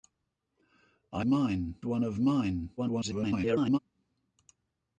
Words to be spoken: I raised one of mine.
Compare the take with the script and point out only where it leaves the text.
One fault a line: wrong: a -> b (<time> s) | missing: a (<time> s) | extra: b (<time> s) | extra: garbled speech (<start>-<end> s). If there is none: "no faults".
wrong: raised -> mine (1.2 s)
extra: garbled speech (2.8-3.8 s)